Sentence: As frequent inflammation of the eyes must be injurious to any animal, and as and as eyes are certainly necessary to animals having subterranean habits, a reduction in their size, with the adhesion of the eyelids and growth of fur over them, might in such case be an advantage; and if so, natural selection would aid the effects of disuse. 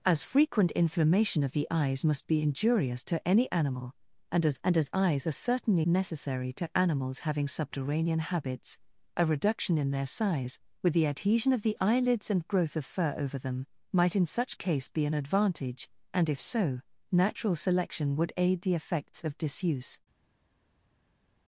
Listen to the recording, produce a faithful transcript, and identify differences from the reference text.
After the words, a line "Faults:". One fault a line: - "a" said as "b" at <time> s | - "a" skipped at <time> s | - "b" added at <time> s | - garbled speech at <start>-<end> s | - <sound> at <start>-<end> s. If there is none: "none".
As frequent inflammation of the eyes must be injurious to any animal, and as and as eyes are certainly necessary to animals having subterranean habits, a reduction in their size, with the adhesion of the eyelids and growth of fur over them, might in such case be an advantage; and if so, natural selection would aid the effects of disuse.
Faults:
none